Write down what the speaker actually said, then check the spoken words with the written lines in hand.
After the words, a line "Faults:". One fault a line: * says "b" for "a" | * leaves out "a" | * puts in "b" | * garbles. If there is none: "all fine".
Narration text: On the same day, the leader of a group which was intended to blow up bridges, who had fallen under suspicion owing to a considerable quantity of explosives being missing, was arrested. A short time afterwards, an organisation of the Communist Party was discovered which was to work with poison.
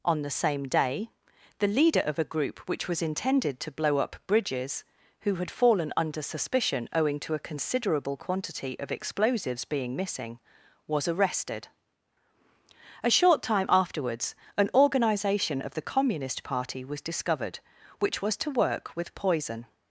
On the same day, the leader of a group which was intended to blow up bridges, who had fallen under suspicion owing to a considerable quantity of explosives being missing, was arrested. A short time afterwards, an organisation of the Communist Party was discovered which was to work with poison.
Faults:
all fine